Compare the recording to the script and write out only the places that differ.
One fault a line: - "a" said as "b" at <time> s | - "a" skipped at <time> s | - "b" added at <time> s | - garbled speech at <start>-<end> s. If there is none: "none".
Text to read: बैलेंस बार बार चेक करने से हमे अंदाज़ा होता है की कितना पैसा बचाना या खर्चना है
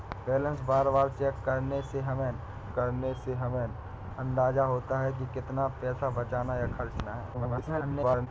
- "करने से हमे" added at 2.7 s
- garbled speech at 7.3-8.3 s